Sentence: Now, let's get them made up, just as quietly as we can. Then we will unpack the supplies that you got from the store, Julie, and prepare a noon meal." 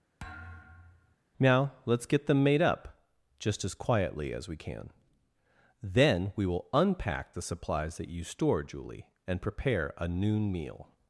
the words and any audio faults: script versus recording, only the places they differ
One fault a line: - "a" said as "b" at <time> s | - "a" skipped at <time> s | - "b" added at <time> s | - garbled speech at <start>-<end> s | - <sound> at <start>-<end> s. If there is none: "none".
- thud at 0.2-1.2 s
- "got from the" skipped at 8.2 s